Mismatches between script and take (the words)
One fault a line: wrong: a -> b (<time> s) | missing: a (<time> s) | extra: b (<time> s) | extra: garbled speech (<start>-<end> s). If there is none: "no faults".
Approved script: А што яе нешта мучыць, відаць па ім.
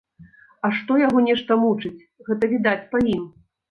wrong: яе -> яго (1.0 s)
extra: гэта (2.3 s)